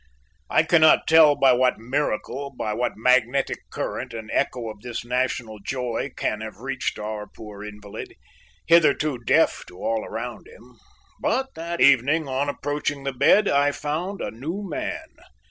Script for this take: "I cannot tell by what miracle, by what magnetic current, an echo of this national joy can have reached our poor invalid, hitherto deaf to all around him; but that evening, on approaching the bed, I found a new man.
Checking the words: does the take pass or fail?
pass